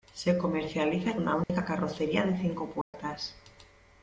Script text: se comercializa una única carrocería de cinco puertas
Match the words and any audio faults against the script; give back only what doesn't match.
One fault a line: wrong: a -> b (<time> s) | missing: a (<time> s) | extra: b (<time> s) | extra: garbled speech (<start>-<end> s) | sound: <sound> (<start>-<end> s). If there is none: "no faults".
sound: dropout (1.4-1.5 s)
sound: dropout (2.8-2.9 s)